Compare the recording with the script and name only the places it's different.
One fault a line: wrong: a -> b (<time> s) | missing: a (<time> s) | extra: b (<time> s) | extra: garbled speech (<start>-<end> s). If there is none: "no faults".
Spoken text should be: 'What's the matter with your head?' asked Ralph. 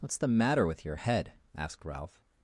no faults